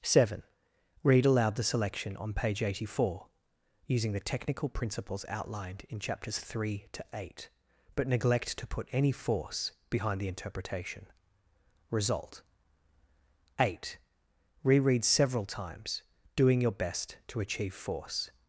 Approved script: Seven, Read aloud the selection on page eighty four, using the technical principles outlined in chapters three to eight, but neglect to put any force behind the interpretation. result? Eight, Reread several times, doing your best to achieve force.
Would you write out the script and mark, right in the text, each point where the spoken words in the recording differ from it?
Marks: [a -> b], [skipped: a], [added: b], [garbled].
Seven, Read aloud the selection on page eighty four, using the technical principles outlined in chapters three to eight, but neglect to put any force behind the interpretation. result? Eight, Reread several times, doing your best to achieve force.